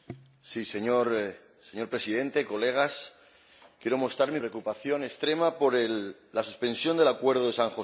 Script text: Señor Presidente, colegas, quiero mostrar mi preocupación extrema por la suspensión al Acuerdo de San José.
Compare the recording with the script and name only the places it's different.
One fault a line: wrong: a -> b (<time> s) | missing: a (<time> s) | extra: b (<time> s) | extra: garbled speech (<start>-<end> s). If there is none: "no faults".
wrong: al -> del (7.0 s)